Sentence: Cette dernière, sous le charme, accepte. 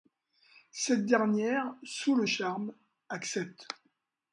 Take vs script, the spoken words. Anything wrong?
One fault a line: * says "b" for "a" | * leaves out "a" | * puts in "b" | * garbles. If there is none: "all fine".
all fine